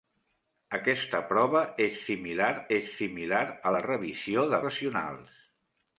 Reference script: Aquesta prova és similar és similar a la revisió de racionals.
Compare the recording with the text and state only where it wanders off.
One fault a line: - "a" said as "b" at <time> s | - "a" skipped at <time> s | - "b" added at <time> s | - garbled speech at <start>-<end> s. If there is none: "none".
none